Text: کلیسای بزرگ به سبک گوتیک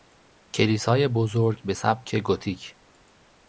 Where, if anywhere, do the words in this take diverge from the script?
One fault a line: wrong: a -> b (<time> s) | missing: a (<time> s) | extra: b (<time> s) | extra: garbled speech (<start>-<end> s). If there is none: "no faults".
no faults